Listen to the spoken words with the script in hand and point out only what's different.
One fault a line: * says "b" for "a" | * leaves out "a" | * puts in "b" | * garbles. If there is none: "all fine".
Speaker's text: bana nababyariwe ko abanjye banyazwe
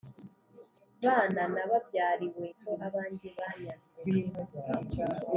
all fine